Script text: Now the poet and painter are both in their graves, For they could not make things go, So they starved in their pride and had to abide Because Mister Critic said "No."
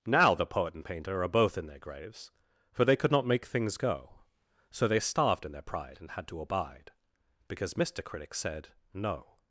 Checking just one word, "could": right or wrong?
right